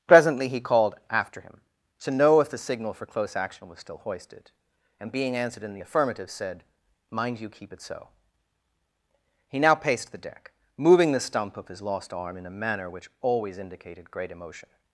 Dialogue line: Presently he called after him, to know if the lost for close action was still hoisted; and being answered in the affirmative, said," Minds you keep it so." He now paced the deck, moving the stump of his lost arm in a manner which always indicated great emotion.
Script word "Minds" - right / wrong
wrong